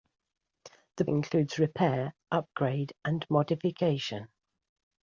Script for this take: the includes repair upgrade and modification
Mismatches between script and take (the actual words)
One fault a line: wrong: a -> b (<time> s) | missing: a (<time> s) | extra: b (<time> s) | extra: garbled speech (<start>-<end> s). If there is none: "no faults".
no faults